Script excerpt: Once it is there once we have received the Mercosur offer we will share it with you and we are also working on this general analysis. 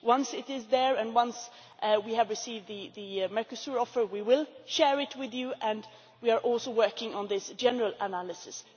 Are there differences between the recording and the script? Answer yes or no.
yes